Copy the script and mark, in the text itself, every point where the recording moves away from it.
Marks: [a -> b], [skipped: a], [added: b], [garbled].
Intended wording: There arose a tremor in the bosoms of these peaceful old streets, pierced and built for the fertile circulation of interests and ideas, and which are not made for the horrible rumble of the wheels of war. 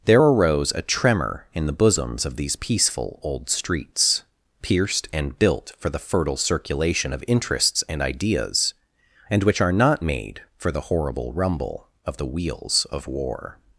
There arose a tremor in the bosoms of these peaceful old streets, pierced and built for the fertile circulation of interests and ideas, and which are not made for the horrible rumble of the wheels of war.